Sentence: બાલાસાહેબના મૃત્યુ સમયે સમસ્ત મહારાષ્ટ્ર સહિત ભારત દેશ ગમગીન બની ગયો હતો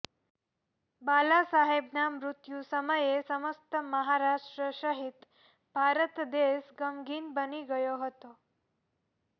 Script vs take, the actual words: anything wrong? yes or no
no